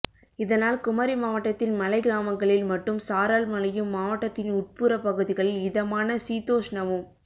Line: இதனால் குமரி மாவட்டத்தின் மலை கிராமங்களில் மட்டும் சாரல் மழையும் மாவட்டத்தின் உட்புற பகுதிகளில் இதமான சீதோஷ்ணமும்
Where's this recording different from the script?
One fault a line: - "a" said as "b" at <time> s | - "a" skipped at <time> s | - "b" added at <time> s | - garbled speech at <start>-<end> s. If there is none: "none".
none